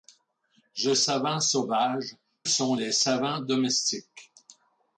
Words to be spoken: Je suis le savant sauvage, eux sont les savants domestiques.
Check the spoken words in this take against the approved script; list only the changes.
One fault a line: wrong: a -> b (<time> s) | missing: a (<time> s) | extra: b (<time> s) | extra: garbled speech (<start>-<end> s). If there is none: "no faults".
missing: suis le (0.9 s)
missing: eux (2.2 s)